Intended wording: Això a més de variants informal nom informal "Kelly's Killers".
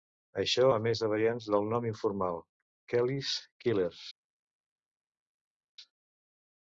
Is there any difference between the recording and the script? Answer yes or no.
yes